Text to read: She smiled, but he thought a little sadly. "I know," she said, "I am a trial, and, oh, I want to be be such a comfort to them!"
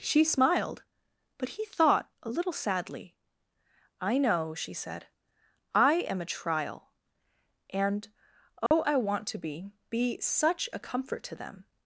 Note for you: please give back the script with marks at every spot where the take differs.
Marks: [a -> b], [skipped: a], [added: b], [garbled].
She smiled, but he thought a little sadly. "I know," she said, "I am a trial, and, oh, I want to be be such a comfort to them!"